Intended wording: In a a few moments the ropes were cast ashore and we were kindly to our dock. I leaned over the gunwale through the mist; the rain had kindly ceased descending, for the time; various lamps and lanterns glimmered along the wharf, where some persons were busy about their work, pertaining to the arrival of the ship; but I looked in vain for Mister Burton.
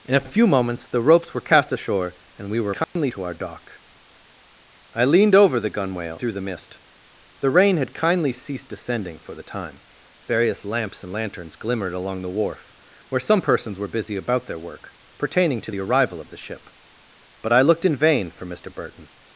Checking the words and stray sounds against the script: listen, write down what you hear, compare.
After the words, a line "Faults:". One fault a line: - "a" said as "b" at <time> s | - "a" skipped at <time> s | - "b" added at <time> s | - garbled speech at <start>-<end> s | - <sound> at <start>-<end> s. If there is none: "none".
In a a few moments the ropes were cast ashore and we were kindly to our dock. I leaned over the gunwale through the mist; the rain had kindly ceased descending, for the time; various lamps and lanterns glimmered along the wharf, where some persons were busy about their work, pertaining to the arrival of the ship; but I looked in vain for Mister Burton.
Faults:
- dropout at 2.8-3.0 s